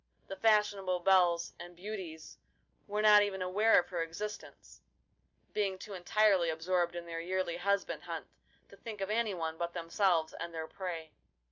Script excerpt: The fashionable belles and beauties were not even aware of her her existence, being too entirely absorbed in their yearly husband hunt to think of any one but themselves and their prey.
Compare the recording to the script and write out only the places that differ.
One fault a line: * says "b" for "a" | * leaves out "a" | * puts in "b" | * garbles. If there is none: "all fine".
* leaves out "her"